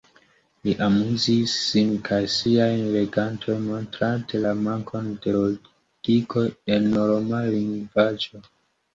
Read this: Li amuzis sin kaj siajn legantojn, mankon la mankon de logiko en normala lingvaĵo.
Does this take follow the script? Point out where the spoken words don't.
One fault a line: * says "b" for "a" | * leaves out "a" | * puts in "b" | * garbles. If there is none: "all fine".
* says "montrante" for "mankon"